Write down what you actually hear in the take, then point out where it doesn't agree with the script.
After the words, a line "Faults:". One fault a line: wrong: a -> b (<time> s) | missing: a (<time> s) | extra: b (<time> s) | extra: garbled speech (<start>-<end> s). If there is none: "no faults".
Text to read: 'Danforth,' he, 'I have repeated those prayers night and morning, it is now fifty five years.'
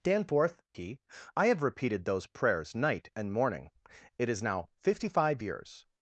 'Danforth,' he, 'I have repeated those prayers night and morning, it is now fifty five years.'
Faults:
no faults